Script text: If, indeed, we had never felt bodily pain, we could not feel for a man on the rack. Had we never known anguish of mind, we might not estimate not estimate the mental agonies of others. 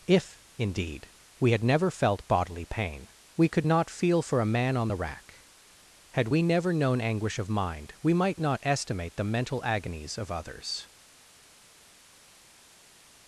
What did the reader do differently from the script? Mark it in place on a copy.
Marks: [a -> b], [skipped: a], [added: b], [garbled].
If, indeed, we had never felt bodily pain, we could not feel for a man on the rack. Had we never known anguish of mind, we might not estimate [skipped: not estimate] the mental agonies of others.